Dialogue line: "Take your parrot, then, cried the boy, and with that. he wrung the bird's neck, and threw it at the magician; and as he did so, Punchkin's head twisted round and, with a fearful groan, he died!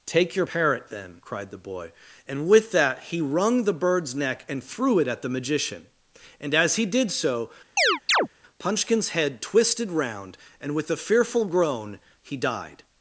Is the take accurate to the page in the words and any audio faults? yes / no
no